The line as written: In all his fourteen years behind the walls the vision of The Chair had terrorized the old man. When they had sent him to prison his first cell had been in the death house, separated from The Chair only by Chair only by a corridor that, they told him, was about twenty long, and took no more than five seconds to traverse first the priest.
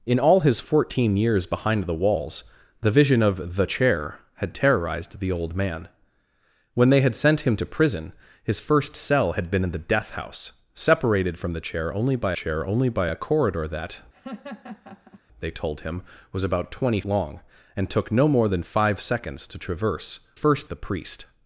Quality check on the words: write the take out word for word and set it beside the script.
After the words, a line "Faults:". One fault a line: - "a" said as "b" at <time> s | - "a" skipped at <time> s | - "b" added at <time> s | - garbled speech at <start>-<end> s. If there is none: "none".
In all his fourteen years behind the walls the vision of The Chair had terrorized the old man. When they had sent him to prison his first cell had been in the death house, separated from The Chair only by Chair only by a corridor that, they told him, was about twenty long, and took no more than five seconds to traverse first the priest.
Faults:
none